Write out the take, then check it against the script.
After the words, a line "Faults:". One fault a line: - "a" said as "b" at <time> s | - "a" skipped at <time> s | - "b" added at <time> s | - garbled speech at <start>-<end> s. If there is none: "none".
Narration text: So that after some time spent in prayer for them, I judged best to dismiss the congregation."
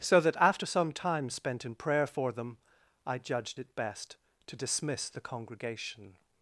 So that after some time spent in prayer for them, I judged it best to dismiss the congregation."
Faults:
- "it" added at 3.6 s